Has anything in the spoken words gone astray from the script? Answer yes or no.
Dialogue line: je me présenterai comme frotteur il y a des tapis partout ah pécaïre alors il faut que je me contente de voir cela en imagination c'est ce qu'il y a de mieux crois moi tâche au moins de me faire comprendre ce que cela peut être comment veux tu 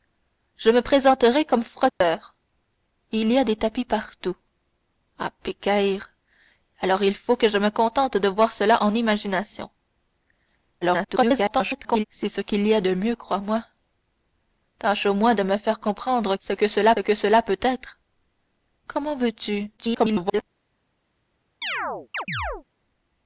yes